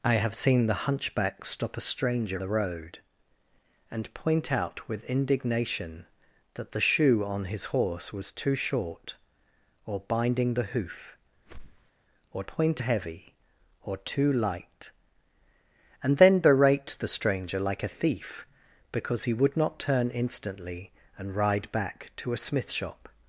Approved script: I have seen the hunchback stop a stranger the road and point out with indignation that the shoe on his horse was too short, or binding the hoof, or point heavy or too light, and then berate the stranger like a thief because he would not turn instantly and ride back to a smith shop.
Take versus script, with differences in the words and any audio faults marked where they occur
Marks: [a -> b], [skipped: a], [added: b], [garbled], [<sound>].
I have seen the hunchback stop a stranger the road and point out with indignation that the shoe on his horse was too short, or binding the hoof, [whoosh] or point heavy or too light, and then berate the stranger like a thief because he would not turn instantly and ride back to a smith shop.